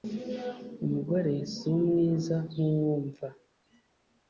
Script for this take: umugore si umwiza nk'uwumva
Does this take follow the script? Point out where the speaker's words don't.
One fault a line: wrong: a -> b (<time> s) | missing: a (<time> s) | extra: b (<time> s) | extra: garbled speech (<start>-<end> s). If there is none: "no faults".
no faults